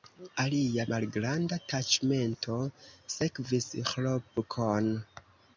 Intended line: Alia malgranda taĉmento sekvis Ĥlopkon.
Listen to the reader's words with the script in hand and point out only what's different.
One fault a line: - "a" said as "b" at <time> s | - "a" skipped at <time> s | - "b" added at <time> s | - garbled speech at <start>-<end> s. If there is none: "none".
none